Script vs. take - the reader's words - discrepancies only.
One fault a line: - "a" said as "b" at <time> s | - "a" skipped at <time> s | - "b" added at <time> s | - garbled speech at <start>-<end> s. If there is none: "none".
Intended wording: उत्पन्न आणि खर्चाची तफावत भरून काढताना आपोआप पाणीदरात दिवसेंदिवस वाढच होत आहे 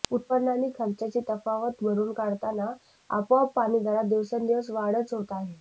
none